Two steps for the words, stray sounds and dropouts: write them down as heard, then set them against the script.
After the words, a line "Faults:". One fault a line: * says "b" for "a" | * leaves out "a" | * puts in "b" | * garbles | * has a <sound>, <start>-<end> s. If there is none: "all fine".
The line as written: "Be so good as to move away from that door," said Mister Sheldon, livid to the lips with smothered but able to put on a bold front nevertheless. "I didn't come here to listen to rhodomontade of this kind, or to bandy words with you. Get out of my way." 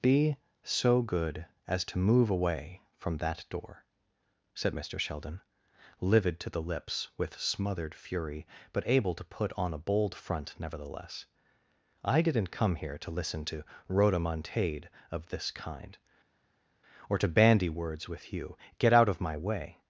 "Be so good as to move away from that door," said Mister Sheldon, livid to the lips with smothered fury, but able to put on a bold front nevertheless. "I didn't come here to listen to rhodomontade of this kind, or to bandy words with you. Get out of my way."
Faults:
* puts in "fury"